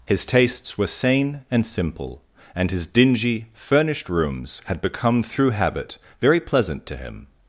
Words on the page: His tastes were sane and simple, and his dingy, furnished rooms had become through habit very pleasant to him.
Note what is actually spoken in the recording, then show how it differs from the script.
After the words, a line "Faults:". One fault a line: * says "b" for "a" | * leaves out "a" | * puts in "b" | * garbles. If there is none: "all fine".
His tastes were sane and simple, and his dingy, furnished rooms had become through habit very pleasant to him.
Faults:
all fine